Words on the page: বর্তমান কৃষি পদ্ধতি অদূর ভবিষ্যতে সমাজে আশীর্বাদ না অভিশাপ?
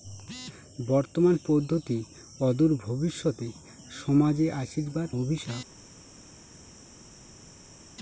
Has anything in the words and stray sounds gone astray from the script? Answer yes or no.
yes